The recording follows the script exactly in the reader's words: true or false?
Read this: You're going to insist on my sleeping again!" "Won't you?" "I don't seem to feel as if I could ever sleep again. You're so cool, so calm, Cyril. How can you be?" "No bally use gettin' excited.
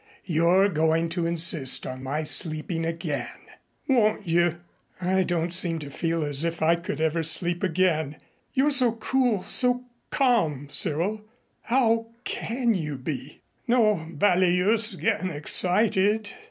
true